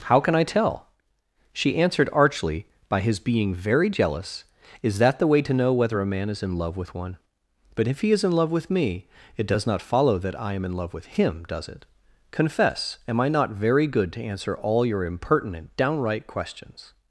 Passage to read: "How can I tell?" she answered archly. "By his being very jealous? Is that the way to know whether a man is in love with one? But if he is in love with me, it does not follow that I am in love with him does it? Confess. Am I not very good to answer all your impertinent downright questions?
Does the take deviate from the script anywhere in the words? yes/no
no